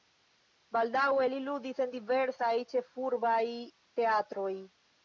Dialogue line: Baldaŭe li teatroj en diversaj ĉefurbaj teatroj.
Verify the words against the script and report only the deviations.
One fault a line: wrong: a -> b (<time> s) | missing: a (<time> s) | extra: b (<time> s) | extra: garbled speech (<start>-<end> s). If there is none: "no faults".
wrong: teatroj -> ludis (1.5 s)